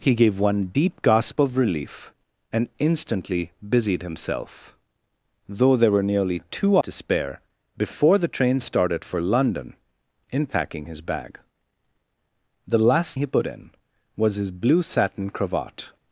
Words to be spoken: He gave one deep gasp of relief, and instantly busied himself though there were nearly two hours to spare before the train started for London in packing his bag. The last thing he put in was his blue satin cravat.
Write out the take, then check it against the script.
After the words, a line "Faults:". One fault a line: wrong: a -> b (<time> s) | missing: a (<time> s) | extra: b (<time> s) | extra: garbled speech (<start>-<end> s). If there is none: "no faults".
He gave one deep gasp of relief, and instantly busied himself though there were nearly two to spare before the train started for London in packing his bag. The last he put in was his blue satin cravat.
Faults:
missing: hours (6.8 s)
missing: thing (13.2 s)